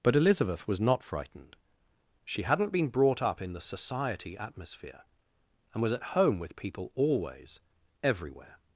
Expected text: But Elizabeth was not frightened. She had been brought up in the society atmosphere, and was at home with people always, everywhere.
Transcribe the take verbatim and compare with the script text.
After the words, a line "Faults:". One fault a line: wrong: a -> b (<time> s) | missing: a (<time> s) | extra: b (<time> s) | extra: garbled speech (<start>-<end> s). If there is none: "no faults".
But Elizabeth was not frightened. She hadn't been brought up in the society atmosphere, and was at home with people always, everywhere.
Faults:
wrong: had -> hadn't (2.4 s)